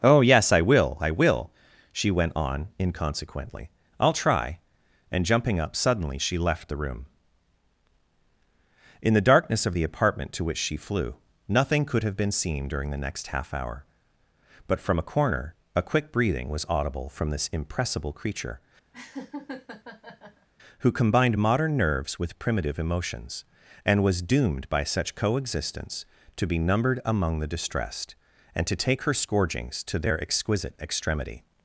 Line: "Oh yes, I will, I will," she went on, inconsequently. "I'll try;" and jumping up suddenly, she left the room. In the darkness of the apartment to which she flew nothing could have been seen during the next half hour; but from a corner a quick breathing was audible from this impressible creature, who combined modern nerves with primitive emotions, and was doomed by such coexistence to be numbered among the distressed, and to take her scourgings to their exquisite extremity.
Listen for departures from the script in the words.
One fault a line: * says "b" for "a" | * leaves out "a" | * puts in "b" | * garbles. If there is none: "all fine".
all fine